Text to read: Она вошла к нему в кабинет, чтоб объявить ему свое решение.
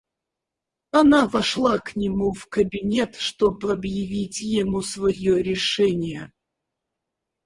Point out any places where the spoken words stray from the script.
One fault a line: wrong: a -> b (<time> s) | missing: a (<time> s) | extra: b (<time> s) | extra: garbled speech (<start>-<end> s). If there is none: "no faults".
no faults